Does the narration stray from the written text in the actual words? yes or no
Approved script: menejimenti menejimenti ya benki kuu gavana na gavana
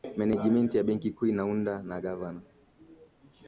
yes